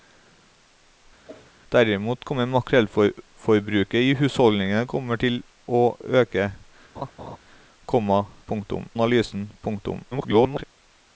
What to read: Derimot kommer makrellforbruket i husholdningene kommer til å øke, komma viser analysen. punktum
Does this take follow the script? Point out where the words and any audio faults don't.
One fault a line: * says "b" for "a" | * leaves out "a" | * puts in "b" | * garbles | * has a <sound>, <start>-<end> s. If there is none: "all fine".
* has a whoosh, 1.3-1.5 s
* has a laugh, 7.0-7.4 s
* says "punktum" for "viser"
* garbles